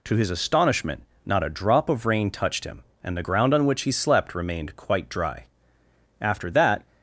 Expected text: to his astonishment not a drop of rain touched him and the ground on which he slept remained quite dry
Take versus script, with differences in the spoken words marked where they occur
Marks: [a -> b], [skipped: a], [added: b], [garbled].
to his astonishment not a drop of rain touched him and the ground on which he slept remained quite dry [added: after that]